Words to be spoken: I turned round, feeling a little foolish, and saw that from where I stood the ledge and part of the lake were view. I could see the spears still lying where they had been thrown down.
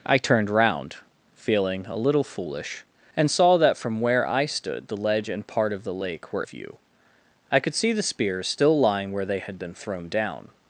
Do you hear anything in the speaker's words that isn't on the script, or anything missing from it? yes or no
no